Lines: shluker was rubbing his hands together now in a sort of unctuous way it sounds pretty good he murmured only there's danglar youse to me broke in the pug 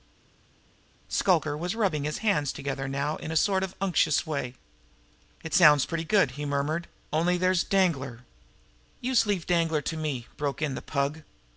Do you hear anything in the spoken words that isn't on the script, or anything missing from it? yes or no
yes